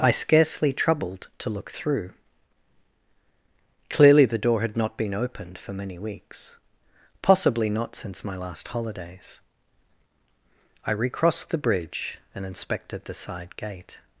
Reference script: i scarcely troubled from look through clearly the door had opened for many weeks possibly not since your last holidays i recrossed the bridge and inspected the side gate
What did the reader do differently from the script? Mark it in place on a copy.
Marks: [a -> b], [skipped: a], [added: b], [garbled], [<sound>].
i scarcely troubled [from -> to] look through clearly the door had [added: not been] opened for many weeks possibly not since [your -> my] last holidays i recrossed the bridge and inspected the side gate